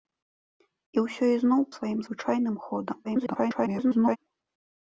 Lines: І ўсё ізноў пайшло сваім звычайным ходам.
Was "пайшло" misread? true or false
true